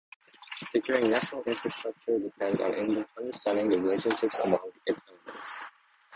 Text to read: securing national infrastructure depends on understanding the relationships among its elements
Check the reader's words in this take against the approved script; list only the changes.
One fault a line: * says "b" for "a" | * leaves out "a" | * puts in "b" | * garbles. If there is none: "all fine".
all fine